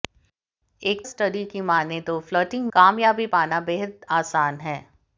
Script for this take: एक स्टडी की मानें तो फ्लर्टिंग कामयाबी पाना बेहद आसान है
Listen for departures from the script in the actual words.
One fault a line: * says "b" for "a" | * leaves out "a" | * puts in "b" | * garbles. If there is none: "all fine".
all fine